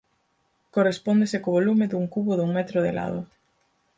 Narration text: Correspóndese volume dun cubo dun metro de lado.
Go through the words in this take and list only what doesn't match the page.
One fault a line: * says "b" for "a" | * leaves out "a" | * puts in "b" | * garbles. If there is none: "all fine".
* puts in "co"